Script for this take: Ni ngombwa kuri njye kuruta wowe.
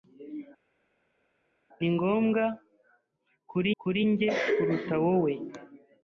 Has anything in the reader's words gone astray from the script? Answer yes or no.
yes